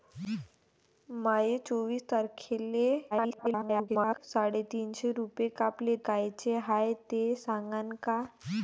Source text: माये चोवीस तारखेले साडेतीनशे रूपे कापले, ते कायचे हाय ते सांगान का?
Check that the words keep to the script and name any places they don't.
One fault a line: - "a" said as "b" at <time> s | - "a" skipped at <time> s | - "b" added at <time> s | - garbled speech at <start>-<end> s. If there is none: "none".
- garbled speech at 3.1-4.2 s
- "ते" skipped at 6.0 s